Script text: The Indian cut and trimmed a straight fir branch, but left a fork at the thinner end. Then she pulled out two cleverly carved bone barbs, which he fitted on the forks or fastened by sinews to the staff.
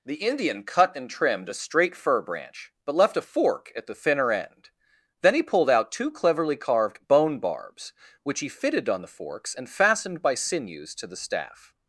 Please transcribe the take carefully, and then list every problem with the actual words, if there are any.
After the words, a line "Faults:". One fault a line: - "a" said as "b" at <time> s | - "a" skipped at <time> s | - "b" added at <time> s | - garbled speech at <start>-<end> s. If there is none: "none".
The Indian cut and trimmed a straight fir branch, but left a fork at the thinner end. Then he pulled out two cleverly carved bone barbs, which he fitted on the forks and fastened by sinews to the staff.
Faults:
- "she" said as "he" at 5.3 s
- "or" said as "and" at 9.5 s